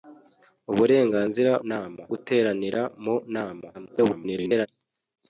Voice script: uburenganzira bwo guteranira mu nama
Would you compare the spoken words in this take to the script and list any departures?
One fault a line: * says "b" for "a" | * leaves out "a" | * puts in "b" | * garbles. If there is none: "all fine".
* says "nama" for "bwo"
* garbles